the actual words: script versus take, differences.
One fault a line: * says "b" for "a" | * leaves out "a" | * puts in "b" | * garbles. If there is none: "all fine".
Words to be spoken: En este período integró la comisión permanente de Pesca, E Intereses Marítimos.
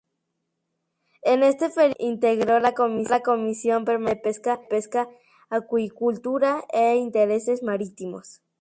* puts in "Acuicultura"